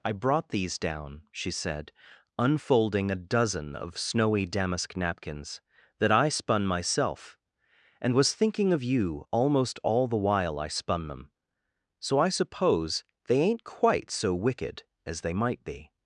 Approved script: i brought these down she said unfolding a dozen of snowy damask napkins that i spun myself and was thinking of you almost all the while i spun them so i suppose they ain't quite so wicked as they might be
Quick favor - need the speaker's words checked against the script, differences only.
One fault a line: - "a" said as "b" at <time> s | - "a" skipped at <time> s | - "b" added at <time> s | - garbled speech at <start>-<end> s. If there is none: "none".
none